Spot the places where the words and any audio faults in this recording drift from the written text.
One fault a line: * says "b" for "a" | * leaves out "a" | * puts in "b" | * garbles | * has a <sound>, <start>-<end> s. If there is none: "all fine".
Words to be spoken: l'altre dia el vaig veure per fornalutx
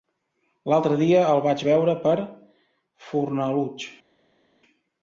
all fine